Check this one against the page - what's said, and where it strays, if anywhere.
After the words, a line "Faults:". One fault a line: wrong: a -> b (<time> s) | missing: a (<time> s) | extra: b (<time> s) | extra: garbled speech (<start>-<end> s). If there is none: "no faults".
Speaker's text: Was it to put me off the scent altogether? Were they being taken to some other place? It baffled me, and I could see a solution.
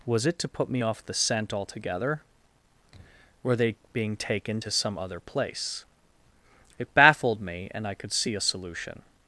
Was it to put me off the scent altogether? Were they being taken to some other place? It baffled me, and I could see a solution.
Faults:
no faults